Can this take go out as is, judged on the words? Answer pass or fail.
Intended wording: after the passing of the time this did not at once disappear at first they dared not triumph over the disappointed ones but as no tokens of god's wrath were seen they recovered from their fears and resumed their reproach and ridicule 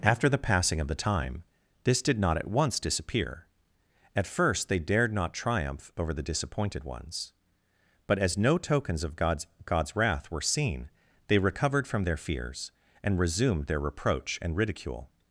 fail